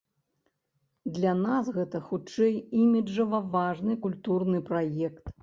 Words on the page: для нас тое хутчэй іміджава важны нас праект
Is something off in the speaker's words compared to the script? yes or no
yes